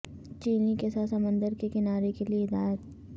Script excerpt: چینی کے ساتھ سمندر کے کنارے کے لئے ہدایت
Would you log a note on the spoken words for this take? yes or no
no